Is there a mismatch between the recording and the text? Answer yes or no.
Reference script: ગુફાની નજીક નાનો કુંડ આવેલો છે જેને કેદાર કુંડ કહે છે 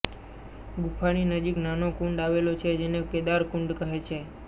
no